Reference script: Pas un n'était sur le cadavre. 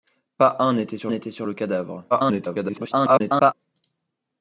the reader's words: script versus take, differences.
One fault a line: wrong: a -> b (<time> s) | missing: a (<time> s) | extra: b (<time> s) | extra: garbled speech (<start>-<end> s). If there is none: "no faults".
extra: n'était sur (1.1 s)
extra: garbled speech (2.1-3.5 s)